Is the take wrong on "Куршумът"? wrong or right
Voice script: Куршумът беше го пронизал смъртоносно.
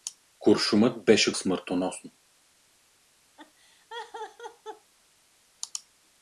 right